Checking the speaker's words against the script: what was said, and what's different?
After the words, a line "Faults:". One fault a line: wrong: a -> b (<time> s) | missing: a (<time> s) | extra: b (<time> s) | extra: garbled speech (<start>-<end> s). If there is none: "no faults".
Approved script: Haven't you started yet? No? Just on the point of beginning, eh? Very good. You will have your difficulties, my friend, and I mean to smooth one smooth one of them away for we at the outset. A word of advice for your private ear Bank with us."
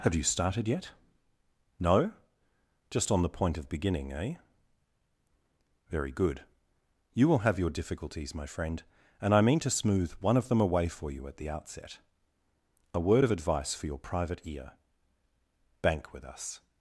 Have you started yet? No? Just on the point of beginning, eh? Very good. You will have your difficulties, my friend, and I mean to smooth one of them away for you at the outset. A word of advice for your private ear Bank with us."
Faults:
wrong: Haven't -> Have (0.0 s)
missing: smooth one (10.4 s)
wrong: we -> you (11.1 s)